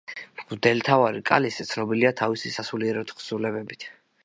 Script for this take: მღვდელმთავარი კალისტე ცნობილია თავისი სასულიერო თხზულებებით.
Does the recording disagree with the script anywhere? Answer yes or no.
no